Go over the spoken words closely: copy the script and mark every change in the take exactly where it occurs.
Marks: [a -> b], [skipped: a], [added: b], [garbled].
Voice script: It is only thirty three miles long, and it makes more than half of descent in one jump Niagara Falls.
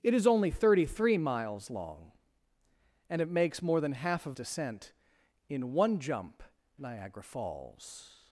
It is only thirty three miles long, and it makes more than half of descent in one jump Niagara Falls.